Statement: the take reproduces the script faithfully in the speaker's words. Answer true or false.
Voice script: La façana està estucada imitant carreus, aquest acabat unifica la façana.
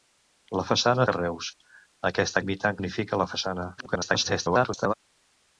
false